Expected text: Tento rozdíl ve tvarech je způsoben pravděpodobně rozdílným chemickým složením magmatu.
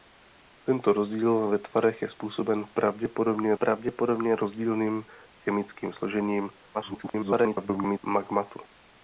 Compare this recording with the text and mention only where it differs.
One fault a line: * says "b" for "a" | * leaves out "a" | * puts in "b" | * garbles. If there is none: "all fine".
* puts in "pravděpodobně"
* garbles